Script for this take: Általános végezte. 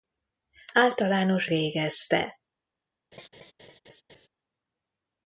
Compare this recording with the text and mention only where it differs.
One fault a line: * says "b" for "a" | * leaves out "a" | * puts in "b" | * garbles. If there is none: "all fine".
all fine